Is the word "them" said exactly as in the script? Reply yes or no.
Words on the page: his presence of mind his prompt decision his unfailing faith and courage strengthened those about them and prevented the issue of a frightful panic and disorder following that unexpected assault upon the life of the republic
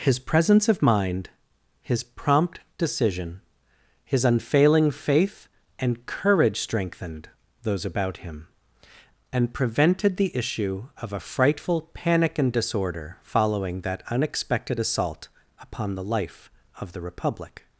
no